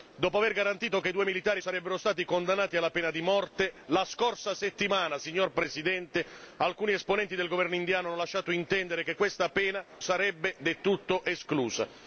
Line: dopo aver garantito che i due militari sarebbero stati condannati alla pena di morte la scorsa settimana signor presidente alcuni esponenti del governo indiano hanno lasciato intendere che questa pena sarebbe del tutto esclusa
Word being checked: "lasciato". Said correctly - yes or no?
yes